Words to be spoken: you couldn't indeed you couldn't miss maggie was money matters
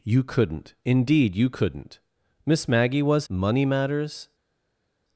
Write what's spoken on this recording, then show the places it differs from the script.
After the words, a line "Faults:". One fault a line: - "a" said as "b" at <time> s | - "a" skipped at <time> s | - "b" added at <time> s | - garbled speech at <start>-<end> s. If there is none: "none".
you couldn't indeed you couldn't miss maggie was money matters
Faults:
none